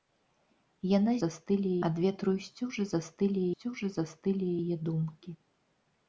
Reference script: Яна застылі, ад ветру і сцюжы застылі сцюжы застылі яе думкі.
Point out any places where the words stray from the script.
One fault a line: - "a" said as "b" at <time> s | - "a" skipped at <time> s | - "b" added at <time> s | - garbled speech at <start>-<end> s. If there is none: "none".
none